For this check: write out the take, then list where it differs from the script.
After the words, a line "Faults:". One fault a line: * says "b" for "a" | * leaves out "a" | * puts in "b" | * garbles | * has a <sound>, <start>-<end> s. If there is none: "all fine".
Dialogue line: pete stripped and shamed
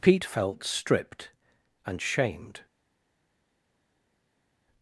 pete felt stripped and shamed
Faults:
* puts in "felt"